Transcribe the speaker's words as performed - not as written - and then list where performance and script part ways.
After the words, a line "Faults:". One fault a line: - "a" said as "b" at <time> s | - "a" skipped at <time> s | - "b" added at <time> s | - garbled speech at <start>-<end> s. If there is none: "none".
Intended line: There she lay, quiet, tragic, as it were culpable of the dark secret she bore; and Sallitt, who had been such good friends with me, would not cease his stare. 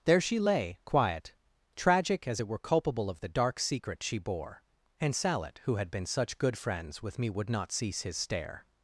There she lay, quiet, tragic, as it were culpable of the dark secret she bore; and Sallitt, who had been such good friends with me, would not cease his stare.
Faults:
none